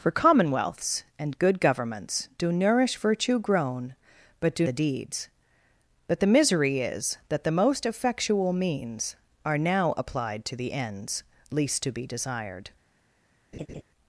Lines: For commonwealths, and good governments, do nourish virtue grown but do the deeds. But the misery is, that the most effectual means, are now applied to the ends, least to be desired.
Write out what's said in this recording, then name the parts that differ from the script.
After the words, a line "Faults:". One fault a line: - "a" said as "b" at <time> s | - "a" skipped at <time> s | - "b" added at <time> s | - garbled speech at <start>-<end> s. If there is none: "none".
For commonwealths, and good governments, do nourish virtue grown but do the deeds. But the misery is, that the most effectual means, are now applied to the ends, least to be desired.
Faults:
none